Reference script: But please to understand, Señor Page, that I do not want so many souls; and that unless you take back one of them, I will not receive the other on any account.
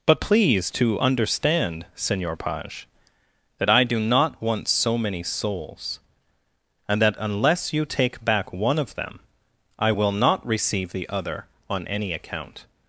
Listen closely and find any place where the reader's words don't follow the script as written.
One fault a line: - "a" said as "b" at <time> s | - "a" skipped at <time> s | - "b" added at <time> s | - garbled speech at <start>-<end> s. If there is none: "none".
none